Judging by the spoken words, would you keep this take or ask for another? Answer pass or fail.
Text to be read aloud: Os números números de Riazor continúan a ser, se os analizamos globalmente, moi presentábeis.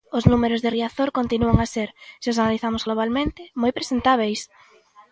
fail